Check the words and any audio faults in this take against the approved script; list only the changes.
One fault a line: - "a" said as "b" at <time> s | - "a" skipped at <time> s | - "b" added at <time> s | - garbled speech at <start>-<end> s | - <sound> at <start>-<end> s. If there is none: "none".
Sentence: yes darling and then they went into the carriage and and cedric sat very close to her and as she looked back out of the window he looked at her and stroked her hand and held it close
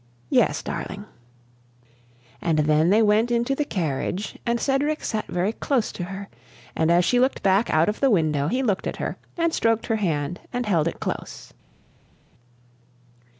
- "and" skipped at 4.6 s